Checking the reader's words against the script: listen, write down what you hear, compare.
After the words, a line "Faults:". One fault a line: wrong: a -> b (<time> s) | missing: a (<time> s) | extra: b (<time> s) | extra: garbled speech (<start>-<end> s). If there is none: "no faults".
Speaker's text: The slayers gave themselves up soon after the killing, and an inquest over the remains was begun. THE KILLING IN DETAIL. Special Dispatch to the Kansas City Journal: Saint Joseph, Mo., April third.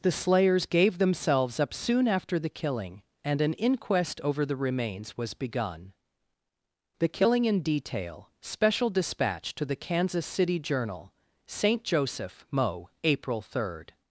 The slayers gave themselves up soon after the killing, and an inquest over the remains was begun. THE KILLING IN DETAIL. Special Dispatch to the Kansas City Journal: Saint Joseph, Mo., April third.
Faults:
no faults